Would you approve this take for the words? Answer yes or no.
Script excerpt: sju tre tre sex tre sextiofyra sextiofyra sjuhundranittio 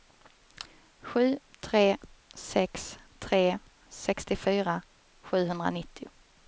no